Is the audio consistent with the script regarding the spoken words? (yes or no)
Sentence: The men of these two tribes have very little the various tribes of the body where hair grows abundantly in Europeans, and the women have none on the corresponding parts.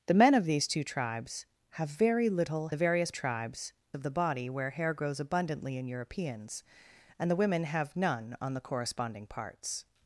yes